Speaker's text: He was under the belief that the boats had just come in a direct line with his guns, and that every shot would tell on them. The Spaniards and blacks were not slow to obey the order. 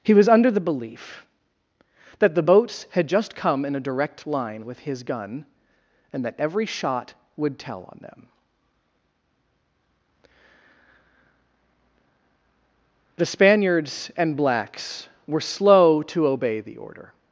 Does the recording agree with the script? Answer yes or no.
no